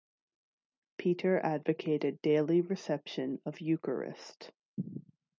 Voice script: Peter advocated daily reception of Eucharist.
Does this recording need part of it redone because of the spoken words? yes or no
no